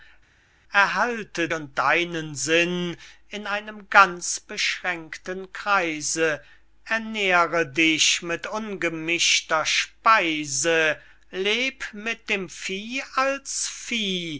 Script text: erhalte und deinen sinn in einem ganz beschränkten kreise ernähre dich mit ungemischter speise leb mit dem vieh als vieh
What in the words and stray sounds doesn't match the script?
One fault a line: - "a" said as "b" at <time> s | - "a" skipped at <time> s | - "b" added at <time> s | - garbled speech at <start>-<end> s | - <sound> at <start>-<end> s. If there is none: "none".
none